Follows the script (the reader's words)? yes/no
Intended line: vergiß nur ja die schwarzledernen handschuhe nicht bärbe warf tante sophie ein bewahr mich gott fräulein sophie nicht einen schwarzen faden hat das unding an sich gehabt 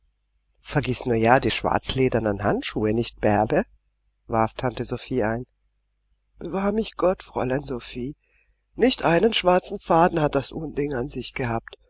yes